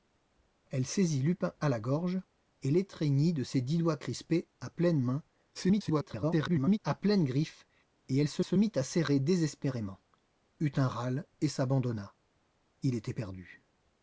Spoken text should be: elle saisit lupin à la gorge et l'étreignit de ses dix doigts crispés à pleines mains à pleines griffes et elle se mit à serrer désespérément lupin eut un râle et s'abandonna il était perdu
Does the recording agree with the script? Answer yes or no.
no